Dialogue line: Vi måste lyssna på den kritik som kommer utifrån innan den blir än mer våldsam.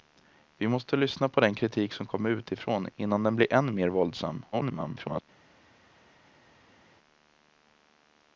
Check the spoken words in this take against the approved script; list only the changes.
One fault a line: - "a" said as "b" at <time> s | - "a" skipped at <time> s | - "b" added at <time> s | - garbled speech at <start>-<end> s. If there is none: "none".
- garbled speech at 4.5-5.2 s